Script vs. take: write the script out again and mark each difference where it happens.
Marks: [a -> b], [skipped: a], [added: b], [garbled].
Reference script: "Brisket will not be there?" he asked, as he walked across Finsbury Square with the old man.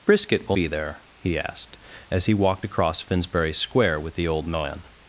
"Brisket will [skipped: not] be there?" he asked, as he walked across Finsbury Square with the old man.